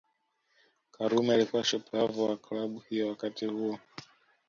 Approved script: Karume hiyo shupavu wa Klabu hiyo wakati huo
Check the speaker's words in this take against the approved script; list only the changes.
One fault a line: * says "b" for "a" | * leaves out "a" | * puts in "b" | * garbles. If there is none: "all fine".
* says "alikuwa" for "hiyo"